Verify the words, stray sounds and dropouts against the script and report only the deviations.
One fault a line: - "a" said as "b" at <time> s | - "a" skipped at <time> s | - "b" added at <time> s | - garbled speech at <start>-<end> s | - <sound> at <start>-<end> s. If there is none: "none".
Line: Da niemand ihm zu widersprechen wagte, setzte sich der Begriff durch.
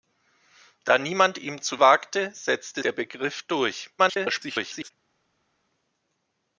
- "widersprechen" skipped at 1.8 s
- "sich" skipped at 2.8 s
- garbled speech at 4.0-4.9 s